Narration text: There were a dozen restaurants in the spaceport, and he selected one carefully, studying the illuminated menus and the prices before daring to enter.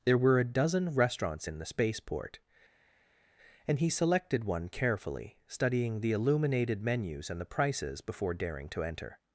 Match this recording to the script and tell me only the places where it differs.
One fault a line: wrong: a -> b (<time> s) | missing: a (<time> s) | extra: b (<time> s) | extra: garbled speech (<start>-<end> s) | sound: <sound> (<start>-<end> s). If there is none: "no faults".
no faults